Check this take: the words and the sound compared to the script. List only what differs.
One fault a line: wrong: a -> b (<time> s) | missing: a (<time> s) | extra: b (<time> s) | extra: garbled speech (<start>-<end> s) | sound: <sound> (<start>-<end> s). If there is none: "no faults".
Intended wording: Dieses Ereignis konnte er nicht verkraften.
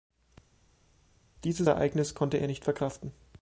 no faults